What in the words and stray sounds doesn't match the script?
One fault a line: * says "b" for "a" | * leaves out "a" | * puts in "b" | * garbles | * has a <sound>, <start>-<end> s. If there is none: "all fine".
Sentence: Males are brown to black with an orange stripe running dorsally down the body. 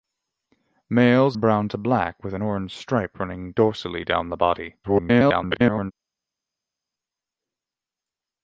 * leaves out "are"
* garbles